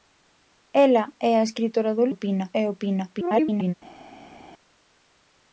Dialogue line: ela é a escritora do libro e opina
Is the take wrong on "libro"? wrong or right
wrong